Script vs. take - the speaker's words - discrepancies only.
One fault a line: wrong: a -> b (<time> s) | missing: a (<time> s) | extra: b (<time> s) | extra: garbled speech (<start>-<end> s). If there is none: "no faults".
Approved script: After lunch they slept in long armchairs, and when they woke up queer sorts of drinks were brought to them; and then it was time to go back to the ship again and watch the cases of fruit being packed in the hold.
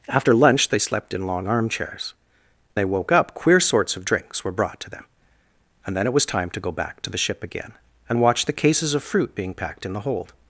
missing: and when (2.1 s)